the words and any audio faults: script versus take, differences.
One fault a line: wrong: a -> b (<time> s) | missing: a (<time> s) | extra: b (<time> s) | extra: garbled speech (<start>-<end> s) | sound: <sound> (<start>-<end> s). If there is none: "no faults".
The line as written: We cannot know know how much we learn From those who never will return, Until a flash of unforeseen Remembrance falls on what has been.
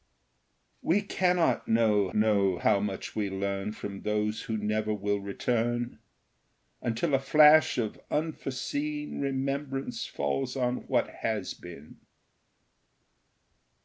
no faults